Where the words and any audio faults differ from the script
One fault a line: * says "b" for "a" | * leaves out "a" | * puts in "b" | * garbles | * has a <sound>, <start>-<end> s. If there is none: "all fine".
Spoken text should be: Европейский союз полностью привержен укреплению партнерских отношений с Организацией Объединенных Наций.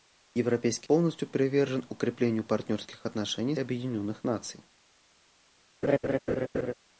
* leaves out "союз"
* leaves out "с Организацией"
* has a laugh, 5.8-6.7 s